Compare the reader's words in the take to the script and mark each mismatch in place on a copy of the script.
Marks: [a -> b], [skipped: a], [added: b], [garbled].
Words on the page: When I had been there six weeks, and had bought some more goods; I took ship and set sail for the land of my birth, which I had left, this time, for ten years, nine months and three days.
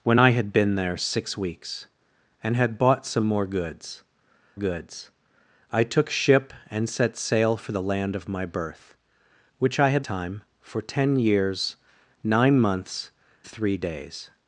When I had been there six weeks, and had bought some more goods; [added: goods] I took ship and set sail for the land of my birth, which I had [skipped: left, this] time, for ten years, nine months [skipped: and] three days.